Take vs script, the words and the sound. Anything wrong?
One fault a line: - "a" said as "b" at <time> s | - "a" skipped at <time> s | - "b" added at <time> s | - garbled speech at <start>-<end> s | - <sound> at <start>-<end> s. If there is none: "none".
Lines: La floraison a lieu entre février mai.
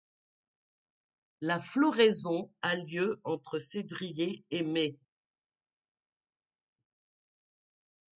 - "et" added at 4.5 s